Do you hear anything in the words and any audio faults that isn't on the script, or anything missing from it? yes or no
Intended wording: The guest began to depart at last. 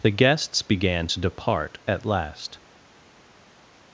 yes